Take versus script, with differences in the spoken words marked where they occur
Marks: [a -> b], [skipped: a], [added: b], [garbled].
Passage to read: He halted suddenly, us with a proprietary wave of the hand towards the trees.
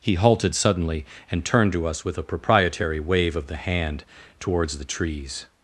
He halted suddenly, [added: and turned to] us with a proprietary wave of the hand towards the trees.